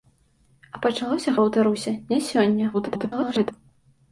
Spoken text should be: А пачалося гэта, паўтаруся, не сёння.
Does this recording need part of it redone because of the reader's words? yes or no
yes